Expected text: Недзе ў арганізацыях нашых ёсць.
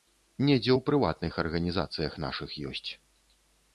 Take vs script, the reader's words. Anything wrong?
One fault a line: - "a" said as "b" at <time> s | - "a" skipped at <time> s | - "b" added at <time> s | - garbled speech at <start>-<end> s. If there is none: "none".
- "прыватных" added at 0.9 s